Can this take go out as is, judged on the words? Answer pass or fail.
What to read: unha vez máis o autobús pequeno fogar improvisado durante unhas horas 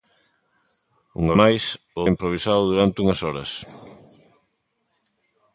fail